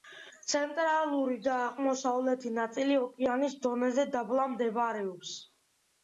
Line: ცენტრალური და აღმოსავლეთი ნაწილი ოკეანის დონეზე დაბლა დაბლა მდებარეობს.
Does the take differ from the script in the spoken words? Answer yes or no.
yes